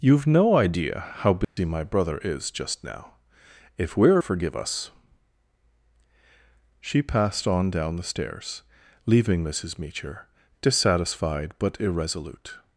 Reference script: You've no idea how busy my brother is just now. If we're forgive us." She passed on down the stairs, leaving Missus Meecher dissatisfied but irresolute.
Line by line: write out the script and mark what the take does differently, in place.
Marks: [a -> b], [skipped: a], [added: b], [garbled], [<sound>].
You've no idea how busy [dropout] my brother is just now. If we're forgive us." She passed on down the stairs, leaving Missus Meecher dissatisfied but irresolute.